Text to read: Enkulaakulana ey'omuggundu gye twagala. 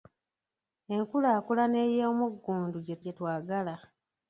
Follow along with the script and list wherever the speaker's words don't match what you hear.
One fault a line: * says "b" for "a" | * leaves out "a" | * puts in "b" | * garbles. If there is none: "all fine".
* puts in "gye"